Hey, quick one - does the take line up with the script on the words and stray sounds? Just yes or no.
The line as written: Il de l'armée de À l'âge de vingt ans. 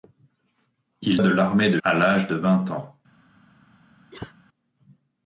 no